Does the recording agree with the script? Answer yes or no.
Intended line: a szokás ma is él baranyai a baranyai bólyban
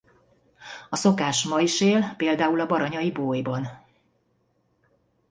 no